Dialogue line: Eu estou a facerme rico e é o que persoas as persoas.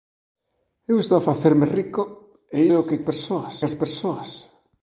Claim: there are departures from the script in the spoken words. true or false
false